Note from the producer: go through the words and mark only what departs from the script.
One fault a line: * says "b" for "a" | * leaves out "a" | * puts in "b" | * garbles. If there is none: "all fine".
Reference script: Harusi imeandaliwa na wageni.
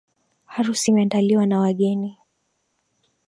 all fine